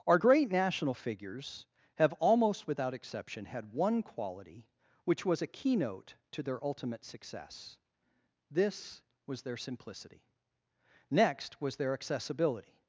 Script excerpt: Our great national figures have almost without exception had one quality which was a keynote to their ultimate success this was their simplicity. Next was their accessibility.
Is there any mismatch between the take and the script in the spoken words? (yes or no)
no